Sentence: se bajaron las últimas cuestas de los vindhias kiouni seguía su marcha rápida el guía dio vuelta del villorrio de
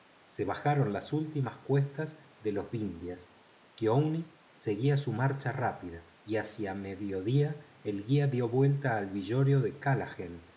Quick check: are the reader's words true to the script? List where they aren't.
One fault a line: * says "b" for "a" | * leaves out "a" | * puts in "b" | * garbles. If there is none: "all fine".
* puts in "y hacia mediodía"
* says "al" for "del"